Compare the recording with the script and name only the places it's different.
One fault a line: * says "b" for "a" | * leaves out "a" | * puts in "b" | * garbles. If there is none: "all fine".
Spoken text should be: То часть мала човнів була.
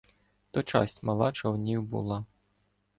all fine